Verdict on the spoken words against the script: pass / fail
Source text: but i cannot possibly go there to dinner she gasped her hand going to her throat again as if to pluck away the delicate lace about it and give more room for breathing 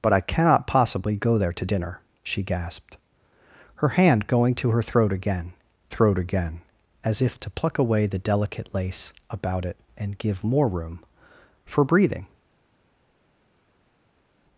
fail